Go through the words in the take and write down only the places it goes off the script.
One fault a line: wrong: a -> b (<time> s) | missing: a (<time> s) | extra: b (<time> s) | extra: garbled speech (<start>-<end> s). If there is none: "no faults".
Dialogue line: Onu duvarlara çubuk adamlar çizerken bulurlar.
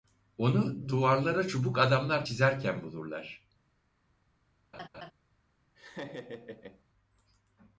no faults